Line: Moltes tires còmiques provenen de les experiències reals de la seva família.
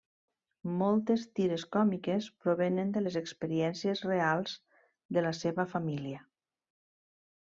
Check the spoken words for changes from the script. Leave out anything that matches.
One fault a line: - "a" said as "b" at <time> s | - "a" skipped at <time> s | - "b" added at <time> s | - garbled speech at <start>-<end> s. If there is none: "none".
none